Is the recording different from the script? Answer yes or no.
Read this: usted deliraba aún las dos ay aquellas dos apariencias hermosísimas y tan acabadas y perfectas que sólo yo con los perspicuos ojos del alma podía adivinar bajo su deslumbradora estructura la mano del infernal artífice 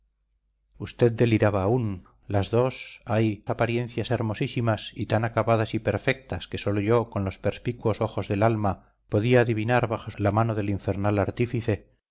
yes